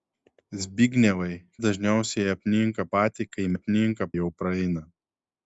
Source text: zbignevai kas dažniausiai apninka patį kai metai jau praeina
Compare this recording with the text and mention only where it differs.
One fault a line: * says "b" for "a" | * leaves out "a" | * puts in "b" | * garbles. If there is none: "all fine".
* leaves out "kas"
* says "apninka" for "metai"